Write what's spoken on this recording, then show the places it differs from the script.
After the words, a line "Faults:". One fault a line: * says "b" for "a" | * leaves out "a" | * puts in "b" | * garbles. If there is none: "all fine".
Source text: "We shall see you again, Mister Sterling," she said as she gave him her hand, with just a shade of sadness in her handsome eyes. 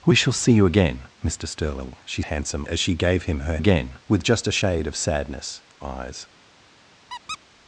"We shall see you again, Mister Sterling," she handsome as she gave him her again, with just a shade of sadness eyes.
Faults:
* says "handsome" for "said"
* says "again" for "hand"
* leaves out "in her handsome"